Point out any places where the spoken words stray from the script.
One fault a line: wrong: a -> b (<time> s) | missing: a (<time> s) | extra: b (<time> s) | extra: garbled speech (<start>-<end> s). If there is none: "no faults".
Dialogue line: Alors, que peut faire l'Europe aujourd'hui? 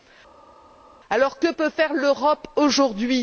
no faults